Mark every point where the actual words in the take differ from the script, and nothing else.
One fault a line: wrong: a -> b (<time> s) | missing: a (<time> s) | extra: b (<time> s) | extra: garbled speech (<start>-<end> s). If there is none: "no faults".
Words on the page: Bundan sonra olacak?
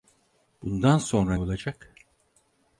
no faults